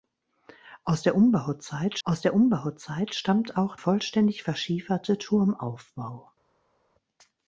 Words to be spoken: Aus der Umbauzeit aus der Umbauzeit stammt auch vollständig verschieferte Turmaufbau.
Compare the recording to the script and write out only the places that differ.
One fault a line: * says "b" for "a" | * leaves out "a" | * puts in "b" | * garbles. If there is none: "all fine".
all fine